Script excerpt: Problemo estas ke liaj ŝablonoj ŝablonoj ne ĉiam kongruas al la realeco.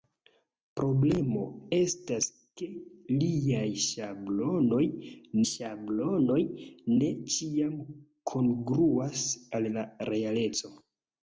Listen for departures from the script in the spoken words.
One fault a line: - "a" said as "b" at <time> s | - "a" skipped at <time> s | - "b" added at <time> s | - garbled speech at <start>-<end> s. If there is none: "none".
none